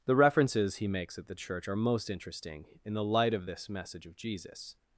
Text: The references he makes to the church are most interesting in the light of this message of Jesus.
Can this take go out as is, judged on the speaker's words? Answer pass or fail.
fail